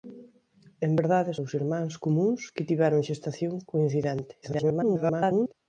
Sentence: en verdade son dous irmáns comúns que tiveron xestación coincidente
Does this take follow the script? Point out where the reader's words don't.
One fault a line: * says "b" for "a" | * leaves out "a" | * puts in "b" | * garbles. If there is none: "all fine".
* leaves out "son"
* garbles